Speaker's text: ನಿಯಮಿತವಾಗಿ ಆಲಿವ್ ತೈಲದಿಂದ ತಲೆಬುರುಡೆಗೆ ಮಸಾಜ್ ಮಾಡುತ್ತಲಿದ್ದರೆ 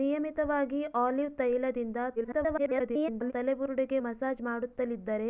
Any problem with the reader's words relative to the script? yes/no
yes